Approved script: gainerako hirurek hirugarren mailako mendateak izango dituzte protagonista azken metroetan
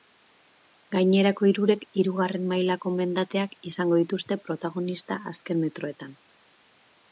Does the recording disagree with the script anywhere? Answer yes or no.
no